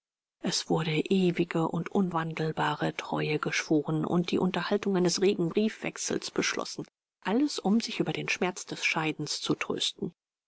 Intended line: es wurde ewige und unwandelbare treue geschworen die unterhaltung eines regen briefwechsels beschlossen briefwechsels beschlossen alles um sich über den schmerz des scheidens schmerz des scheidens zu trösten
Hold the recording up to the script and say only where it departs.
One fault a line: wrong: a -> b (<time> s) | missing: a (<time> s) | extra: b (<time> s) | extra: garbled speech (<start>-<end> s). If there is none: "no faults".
extra: und (4.0 s)
missing: briefwechsels beschlossen (6.9 s)
missing: schmerz des scheidens (9.4 s)